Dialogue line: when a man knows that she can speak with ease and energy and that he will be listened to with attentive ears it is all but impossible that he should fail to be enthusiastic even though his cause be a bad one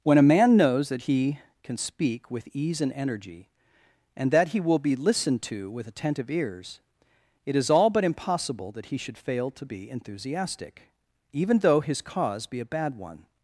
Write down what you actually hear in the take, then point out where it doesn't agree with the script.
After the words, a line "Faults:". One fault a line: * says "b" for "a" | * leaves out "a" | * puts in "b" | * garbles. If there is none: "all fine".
when a man knows that he can speak with ease and energy and that he will be listened to with attentive ears it is all but impossible that he should fail to be enthusiastic even though his cause be a bad one
Faults:
* says "he" for "she"